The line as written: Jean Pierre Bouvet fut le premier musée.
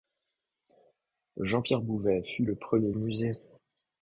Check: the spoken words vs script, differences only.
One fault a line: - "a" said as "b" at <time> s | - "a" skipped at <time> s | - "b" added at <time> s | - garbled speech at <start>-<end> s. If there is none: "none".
none